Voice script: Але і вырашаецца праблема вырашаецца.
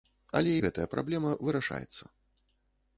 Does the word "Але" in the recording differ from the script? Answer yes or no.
no